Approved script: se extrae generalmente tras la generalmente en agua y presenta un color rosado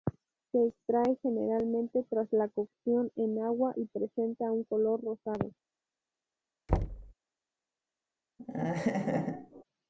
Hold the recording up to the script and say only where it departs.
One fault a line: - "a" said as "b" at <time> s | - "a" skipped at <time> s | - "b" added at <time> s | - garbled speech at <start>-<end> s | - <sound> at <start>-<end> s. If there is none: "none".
- "generalmente" said as "cocción" at 2.5 s
- thud at 6.7-7.1 s
- laugh at 8.4-9.6 s